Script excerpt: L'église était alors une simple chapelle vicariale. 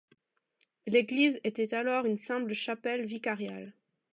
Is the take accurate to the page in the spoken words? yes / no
yes